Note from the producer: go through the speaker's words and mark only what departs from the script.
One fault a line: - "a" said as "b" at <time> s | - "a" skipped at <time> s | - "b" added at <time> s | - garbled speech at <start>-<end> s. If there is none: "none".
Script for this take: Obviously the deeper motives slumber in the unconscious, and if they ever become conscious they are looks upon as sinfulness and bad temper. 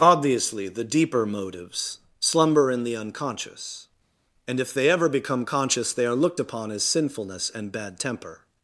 - "looks" said as "looked" at 6.2 s